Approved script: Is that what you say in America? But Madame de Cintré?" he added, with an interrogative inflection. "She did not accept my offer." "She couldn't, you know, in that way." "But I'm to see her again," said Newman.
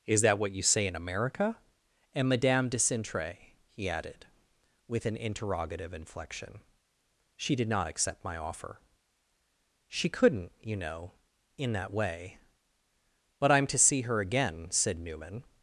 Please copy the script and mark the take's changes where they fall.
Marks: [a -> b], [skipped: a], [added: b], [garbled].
Is that what you say in America? [But -> And] Madame de Cintré?" he added, with an interrogative inflection. "She did not accept my offer." "She couldn't, you know, in that way." "But I'm to see her again," said Newman.